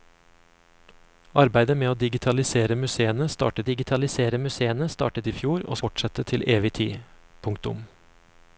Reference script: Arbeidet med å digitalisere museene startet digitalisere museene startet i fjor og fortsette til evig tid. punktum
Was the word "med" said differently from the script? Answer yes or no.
no